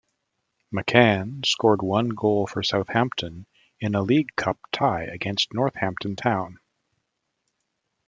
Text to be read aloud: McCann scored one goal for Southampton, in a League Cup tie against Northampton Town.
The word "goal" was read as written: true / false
true